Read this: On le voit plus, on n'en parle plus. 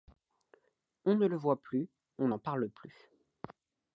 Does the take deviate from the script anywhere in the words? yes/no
yes